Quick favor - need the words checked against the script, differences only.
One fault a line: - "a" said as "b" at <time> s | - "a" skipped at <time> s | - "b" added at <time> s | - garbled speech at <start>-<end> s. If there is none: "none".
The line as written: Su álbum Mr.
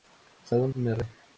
none